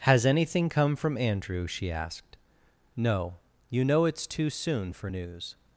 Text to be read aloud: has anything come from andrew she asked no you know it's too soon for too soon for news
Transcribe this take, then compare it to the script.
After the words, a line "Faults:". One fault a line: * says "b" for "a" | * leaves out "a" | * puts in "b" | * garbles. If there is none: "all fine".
has anything come from andrew she asked no you know it's too soon for news
Faults:
* leaves out "too soon for"